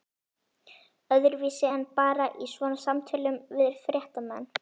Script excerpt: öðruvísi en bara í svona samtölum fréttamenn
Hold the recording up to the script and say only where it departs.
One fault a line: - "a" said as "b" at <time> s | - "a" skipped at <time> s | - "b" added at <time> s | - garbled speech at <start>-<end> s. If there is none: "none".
- "við" added at 3.6 s